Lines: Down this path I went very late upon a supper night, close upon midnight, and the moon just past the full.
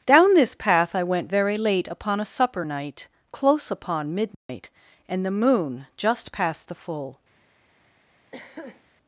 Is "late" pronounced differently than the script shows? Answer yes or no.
no